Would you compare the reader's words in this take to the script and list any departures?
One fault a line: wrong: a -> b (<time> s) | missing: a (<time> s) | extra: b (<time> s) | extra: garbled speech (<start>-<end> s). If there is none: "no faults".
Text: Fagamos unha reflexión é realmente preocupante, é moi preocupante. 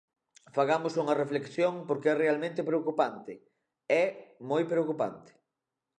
extra: porque (1.9 s)